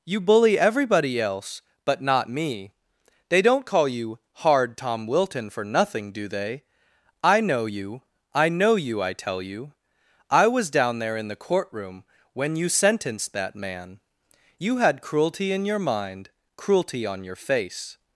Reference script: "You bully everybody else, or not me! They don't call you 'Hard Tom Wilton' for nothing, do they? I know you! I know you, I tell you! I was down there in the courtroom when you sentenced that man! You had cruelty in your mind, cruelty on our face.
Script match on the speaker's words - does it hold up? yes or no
no